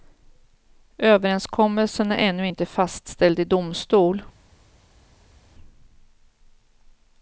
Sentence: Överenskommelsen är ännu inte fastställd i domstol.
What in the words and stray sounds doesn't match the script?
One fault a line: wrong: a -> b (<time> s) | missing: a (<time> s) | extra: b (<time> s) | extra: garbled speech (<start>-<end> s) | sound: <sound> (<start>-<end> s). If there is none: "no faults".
no faults